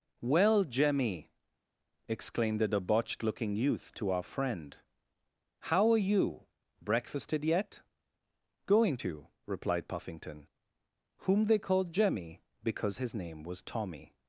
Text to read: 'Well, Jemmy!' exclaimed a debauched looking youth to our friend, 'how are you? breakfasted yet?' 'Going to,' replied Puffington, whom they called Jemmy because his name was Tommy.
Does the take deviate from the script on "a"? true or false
true